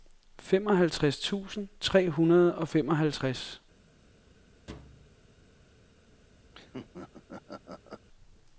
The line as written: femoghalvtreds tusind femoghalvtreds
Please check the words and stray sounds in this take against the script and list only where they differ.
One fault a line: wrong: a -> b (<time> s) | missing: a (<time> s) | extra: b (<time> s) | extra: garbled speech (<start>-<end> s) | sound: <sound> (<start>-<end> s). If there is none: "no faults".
extra: tre hundrede og (1.8 s)
sound: thud (4.7-5.2 s)
sound: laugh (6.5-8.1 s)